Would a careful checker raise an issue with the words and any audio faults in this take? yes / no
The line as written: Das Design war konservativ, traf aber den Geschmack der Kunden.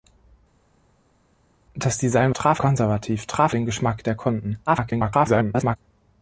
yes